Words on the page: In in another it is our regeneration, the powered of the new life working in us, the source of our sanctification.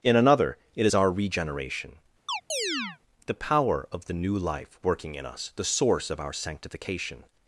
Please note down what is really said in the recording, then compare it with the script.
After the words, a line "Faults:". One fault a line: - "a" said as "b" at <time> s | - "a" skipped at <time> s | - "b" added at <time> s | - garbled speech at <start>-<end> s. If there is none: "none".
In another it is our regeneration, the power of the new life working in us, the source of our sanctification.
Faults:
- "in" skipped at 0.1 s
- "powered" said as "power" at 3.3 s